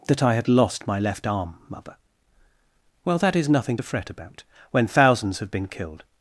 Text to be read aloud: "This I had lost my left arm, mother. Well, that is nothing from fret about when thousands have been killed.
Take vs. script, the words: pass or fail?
fail